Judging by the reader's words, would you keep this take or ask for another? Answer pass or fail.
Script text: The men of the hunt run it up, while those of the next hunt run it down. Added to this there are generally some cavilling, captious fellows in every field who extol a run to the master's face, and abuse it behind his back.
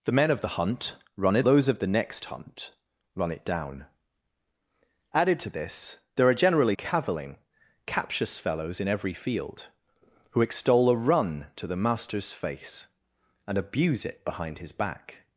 fail